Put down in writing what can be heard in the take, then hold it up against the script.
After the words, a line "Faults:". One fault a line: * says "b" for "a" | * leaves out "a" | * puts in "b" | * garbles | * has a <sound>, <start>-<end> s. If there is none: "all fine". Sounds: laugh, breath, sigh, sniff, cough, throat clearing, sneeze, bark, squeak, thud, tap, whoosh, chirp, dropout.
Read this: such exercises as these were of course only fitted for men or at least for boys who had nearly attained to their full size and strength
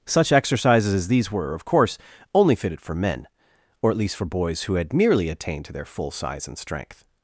such exercises as these were of course only fitted for men or at least for boys who had merely attained to their full size and strength
Faults:
* says "merely" for "nearly"